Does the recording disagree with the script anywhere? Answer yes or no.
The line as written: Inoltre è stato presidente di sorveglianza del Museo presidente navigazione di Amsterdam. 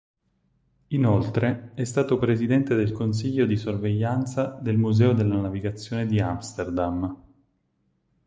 yes